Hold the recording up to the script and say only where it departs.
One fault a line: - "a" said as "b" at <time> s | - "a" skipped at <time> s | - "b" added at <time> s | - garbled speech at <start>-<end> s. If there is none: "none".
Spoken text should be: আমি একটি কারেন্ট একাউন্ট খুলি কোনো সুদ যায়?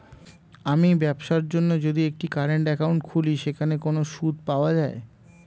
- "ব্যবসার জন্য যদি" added at 0.9 s
- "সেখানে" added at 3.4 s
- "পাওয়া" added at 4.5 s